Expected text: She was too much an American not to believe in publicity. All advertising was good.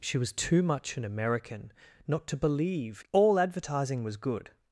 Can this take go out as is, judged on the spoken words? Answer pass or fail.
fail